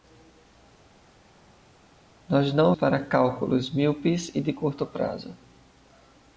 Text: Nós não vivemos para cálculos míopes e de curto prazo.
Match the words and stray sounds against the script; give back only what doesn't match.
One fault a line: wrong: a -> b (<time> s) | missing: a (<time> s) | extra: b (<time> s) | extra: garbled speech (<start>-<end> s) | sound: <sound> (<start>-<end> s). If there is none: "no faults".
missing: vivemos (2.7 s)